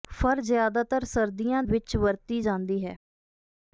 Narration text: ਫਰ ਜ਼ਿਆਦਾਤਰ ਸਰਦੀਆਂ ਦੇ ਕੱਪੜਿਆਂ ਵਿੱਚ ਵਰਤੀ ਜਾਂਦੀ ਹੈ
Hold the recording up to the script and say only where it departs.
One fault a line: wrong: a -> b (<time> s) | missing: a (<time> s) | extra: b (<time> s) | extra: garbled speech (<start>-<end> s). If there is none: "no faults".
missing: ਦੇ ਕੱਪੜਿਆਂ (1.6 s)